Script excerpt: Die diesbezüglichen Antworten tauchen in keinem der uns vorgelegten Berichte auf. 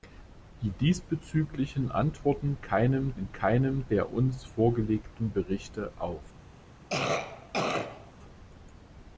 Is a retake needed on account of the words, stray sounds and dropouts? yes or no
yes